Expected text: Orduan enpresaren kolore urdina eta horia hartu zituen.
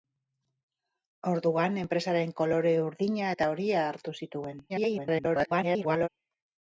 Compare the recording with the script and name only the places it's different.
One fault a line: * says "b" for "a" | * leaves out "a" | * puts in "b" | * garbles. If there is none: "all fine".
* garbles